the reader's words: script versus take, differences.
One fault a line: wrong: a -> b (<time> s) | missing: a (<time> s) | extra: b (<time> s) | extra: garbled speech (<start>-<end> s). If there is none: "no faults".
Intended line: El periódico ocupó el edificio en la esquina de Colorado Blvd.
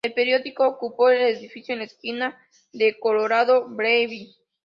no faults